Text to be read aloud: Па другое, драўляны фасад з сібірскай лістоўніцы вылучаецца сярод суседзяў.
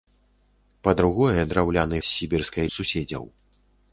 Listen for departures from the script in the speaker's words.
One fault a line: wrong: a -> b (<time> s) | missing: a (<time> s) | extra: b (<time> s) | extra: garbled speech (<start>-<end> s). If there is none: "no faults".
missing: фасад (2.0 s)
missing: лістоўніцы вылучаецца сярод (2.6 s)